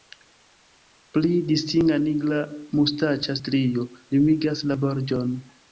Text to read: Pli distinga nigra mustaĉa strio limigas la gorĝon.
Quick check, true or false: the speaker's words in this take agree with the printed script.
true